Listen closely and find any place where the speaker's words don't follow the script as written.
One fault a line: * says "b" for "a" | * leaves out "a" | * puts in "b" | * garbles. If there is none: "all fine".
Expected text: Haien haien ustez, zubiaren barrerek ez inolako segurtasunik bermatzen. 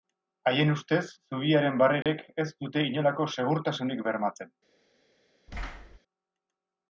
* leaves out "haien"
* puts in "dute"